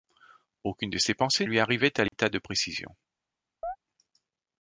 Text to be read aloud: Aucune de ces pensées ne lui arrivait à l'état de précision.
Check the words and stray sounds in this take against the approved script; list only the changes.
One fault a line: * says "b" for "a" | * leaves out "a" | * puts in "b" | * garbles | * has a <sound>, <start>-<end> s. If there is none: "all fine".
* leaves out "ne"
* has a dropout, 2.1-2.1 s
* has a chirp, 3.6-3.8 s